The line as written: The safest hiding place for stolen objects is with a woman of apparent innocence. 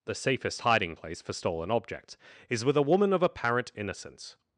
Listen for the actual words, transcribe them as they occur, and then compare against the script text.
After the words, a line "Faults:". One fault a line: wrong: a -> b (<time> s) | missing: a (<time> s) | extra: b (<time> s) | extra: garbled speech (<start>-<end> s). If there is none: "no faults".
The safest hiding place for stolen objects is with a woman of apparent innocence.
Faults:
no faults